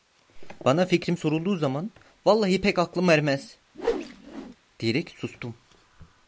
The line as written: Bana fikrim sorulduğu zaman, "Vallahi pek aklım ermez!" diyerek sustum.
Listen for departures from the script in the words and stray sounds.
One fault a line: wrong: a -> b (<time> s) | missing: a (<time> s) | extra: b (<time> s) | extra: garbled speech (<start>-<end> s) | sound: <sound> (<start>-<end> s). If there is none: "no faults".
sound: whoosh (3.7-4.6 s)